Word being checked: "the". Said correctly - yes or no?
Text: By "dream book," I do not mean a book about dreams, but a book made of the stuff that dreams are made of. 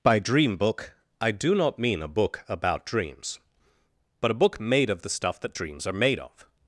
yes